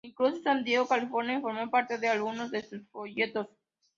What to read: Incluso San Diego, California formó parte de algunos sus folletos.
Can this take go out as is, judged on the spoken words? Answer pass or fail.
fail